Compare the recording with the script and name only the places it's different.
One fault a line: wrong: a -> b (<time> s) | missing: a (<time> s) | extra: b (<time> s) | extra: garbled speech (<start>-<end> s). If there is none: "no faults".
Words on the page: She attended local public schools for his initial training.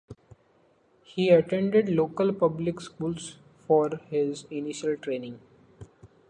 wrong: She -> He (1.0 s)